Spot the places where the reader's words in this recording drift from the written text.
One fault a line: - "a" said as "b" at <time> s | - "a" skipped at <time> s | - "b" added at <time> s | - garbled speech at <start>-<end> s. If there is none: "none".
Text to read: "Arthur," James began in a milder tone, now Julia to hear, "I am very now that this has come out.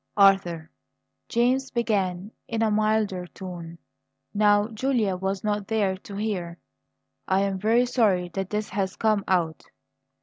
- "was not there" added at 5.2 s
- "now" said as "sorry" at 7.8 s